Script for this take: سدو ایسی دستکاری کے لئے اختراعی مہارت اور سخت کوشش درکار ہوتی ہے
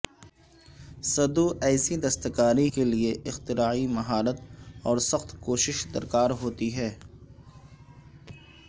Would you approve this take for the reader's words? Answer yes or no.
yes